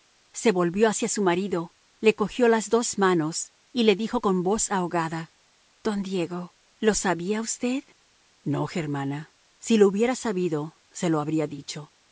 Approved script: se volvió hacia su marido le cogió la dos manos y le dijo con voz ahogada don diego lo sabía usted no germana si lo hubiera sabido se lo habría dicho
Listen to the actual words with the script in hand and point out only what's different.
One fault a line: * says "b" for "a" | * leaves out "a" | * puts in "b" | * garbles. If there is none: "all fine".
* says "las" for "la"